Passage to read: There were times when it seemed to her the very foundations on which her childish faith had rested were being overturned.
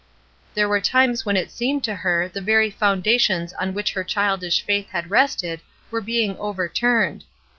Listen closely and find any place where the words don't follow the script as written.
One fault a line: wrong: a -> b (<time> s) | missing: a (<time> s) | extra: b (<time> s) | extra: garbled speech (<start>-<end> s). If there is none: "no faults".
no faults